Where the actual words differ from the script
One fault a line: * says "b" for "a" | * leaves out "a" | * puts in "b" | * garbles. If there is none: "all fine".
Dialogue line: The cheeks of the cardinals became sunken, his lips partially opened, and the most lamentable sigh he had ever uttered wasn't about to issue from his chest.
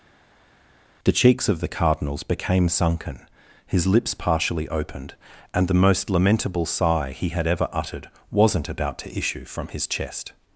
all fine